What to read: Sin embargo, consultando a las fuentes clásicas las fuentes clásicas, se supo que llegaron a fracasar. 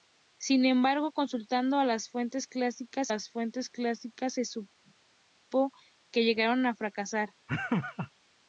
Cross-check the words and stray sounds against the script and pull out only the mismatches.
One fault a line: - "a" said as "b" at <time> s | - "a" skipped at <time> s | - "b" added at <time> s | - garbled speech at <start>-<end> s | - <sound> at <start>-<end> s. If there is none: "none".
- laugh at 7.5-8.1 s